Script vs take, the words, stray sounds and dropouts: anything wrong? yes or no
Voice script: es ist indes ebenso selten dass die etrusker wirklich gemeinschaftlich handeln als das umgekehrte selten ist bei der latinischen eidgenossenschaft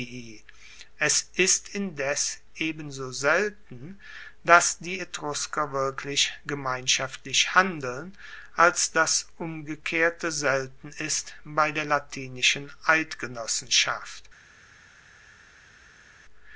no